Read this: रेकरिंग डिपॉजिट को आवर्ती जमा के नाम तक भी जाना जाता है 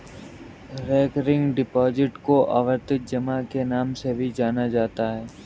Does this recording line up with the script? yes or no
no